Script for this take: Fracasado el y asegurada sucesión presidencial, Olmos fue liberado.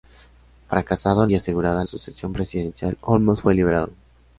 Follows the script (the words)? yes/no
yes